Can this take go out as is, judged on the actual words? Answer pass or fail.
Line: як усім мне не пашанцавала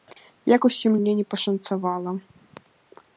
pass